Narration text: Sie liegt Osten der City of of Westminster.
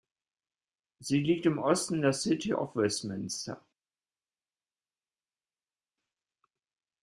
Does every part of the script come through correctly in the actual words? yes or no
no